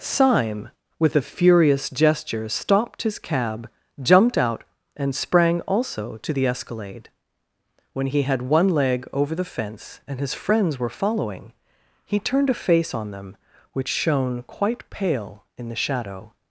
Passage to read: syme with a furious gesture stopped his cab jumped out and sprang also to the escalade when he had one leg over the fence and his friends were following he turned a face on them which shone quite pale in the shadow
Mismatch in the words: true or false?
false